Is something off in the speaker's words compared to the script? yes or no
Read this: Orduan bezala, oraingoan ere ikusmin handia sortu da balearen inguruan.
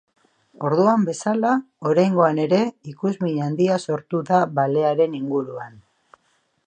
no